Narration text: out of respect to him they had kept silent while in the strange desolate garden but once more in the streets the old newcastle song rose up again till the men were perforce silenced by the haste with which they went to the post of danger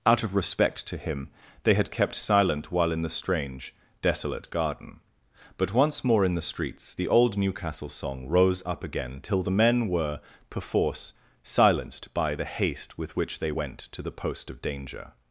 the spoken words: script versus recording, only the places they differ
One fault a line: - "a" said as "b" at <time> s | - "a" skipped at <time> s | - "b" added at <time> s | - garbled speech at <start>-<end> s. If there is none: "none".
none